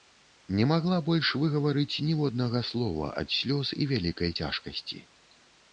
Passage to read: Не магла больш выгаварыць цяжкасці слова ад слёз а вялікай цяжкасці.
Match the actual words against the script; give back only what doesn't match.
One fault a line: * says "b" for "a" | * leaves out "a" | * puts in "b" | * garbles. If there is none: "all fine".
* says "ніводнага" for "цяжкасці"
* says "і" for "а"